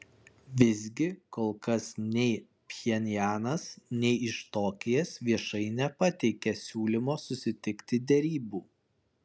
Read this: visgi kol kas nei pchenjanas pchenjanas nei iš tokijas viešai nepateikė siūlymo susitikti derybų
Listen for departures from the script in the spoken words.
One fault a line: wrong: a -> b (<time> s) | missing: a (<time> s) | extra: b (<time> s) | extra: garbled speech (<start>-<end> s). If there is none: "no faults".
missing: pchenjanas (3.6 s)